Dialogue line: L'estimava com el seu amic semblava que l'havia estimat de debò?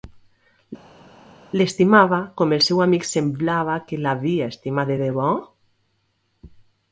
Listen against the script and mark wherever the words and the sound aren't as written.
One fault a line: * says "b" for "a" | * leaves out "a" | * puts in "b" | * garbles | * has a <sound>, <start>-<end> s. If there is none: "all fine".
all fine